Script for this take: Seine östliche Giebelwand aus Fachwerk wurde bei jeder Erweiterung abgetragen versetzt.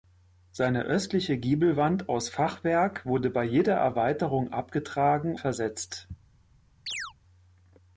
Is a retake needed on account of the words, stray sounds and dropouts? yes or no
yes